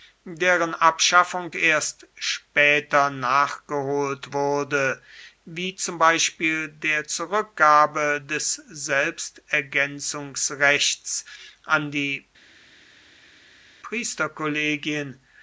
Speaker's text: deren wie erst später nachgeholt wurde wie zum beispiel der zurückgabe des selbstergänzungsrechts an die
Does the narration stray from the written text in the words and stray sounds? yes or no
yes